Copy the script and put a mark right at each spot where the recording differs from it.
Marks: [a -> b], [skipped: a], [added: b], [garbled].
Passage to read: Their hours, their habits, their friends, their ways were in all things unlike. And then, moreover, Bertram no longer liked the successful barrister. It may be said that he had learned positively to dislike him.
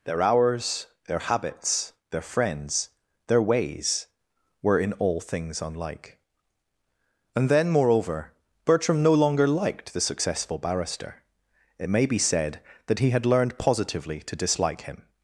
Their hours, their habits, their friends, their ways were in all things unlike. And then, moreover, Bertram no longer liked the successful barrister. It may be said that he had learned positively to dislike him.